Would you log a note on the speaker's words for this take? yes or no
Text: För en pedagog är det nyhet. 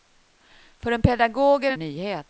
no